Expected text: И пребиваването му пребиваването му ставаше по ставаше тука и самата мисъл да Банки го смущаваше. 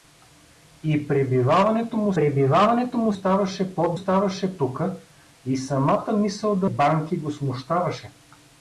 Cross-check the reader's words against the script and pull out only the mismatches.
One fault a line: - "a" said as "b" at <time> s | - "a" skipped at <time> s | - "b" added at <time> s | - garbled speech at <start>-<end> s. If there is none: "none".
none